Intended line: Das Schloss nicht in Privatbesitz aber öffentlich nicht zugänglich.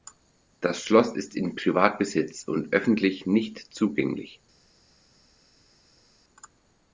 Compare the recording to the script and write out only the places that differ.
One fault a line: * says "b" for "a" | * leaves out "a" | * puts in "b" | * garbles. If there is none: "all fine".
* says "ist" for "nicht"
* says "und" for "aber"